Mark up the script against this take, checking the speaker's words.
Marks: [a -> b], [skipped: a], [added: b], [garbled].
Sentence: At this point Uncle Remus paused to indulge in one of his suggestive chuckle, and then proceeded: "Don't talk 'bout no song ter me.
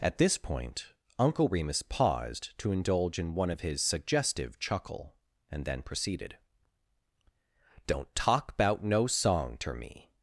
At this point Uncle Remus paused to indulge in one of his suggestive chuckle, and then proceeded: "Don't talk 'bout no song ter me.